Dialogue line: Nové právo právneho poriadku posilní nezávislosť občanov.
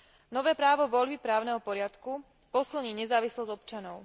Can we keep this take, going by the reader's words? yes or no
no